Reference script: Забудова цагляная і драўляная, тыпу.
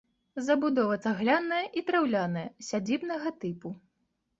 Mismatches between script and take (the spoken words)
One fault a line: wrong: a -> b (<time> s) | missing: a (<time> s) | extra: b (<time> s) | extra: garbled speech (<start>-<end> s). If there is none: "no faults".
extra: сядзібнага (2.7 s)